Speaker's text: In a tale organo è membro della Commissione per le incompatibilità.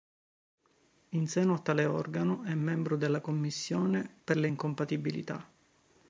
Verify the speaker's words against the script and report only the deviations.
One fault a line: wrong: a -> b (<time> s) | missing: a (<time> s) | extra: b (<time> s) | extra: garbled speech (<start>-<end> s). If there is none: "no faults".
extra: seno (1.3 s)